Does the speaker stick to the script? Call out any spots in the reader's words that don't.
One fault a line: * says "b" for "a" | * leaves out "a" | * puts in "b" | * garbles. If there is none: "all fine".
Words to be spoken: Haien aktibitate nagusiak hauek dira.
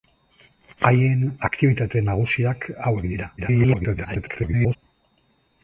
* garbles